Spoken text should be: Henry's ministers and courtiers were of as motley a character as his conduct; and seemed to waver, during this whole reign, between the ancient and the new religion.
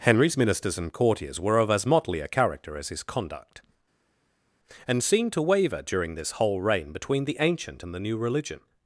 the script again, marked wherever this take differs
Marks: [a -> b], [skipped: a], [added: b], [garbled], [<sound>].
Henry's ministers and courtiers were of as motley a character as his conduct; and seemed to waver, during this whole reign, between the ancient and the new religion.